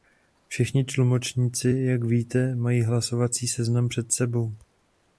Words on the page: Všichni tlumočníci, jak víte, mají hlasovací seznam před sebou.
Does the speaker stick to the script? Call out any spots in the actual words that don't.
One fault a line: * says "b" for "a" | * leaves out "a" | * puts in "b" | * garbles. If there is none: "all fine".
all fine